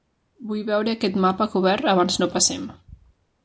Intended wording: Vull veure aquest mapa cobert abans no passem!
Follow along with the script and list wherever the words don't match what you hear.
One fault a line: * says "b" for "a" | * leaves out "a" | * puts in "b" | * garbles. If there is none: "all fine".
all fine